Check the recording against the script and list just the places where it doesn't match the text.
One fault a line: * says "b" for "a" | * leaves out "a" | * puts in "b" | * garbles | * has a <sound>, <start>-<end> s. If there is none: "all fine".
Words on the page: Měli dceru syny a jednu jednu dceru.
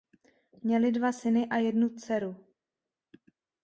* says "dva" for "dceru"
* leaves out "jednu"